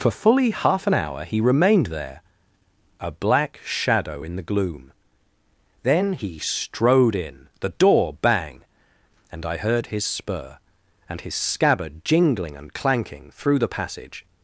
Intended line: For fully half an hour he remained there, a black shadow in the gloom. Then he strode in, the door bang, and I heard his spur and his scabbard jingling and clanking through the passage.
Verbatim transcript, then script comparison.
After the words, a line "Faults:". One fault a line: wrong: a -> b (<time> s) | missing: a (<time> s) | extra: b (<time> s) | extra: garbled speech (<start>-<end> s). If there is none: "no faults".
For fully half an hour he remained there, a black shadow in the gloom. Then he strode in, the door bang, and I heard his spur and his scabbard jingling and clanking through the passage.
Faults:
no faults